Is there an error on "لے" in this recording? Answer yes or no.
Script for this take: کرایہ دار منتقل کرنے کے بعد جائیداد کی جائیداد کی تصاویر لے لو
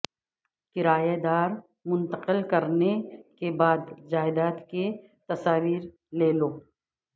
no